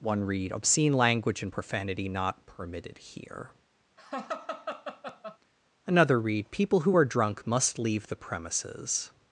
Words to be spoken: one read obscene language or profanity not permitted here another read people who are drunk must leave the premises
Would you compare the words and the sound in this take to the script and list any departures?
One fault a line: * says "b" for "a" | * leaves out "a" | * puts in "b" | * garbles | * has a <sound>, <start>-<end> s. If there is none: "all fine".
* says "and" for "or"
* has a laugh, 4.0-5.4 s